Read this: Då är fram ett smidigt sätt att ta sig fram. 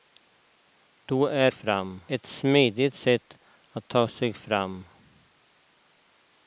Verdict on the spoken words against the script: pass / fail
pass